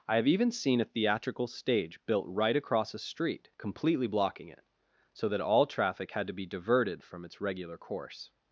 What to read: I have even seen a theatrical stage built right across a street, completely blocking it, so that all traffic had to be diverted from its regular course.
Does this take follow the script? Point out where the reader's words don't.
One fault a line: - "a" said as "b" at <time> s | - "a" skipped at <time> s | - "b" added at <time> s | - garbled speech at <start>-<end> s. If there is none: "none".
none